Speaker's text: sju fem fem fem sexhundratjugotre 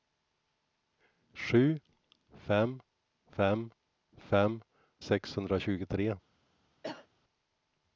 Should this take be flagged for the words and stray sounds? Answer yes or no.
yes